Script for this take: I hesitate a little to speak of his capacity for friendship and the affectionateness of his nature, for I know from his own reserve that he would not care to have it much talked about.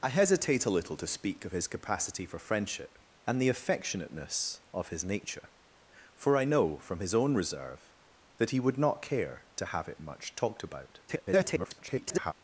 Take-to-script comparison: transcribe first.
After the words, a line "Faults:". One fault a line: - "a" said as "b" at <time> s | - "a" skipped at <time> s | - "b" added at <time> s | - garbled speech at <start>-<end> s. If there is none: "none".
I hesitate a little to speak of his capacity for friendship and the affectionateness of his nature, for I know from his own reserve that he would not care to have it much talked about. [garbled]
Faults:
- garbled speech at 11.1-12.3 s